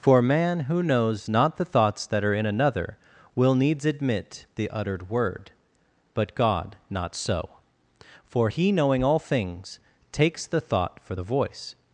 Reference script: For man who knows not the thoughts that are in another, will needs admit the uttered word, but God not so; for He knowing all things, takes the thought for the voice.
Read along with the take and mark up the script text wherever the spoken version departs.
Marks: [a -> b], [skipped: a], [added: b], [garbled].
For man who knows not the thoughts that are in another, will needs admit the uttered word, but God not so; for He knowing all things, takes the thought for the voice.